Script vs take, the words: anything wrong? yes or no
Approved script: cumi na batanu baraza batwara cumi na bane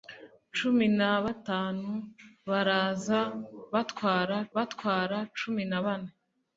yes